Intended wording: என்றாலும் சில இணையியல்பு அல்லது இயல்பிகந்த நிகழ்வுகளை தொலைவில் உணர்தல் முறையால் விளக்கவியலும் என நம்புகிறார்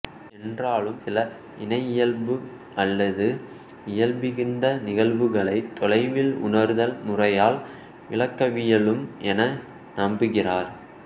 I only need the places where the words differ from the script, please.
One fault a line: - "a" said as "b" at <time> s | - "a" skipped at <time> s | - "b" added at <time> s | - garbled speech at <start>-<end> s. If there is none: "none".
none